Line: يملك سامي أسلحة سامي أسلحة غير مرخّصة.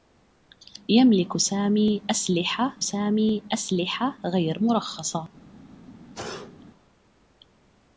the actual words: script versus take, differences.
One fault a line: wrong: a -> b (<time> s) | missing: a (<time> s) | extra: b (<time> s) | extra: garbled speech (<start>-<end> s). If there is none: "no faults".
no faults